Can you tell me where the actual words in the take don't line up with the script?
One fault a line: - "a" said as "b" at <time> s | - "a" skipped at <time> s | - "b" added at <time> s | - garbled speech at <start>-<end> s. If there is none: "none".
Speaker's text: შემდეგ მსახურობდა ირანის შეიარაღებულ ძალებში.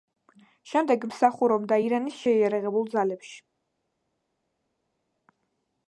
none